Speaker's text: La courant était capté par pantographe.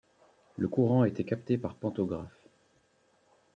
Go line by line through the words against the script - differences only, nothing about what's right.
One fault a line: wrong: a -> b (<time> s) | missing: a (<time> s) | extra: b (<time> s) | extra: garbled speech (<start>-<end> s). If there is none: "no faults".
wrong: La -> Le (0.6 s)